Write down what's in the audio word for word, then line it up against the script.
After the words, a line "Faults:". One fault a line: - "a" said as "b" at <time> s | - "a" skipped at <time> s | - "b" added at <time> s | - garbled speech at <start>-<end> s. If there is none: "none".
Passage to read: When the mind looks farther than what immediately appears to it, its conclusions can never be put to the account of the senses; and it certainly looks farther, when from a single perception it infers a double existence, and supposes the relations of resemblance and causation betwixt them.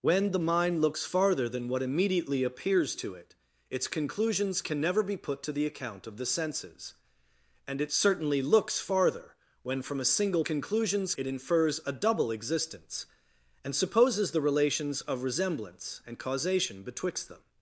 When the mind looks farther than what immediately appears to it, its conclusions can never be put to the account of the senses; and it certainly looks farther, when from a single conclusions it infers a double existence, and supposes the relations of resemblance and causation betwixt them.
Faults:
- "perception" said as "conclusions" at 10.4 s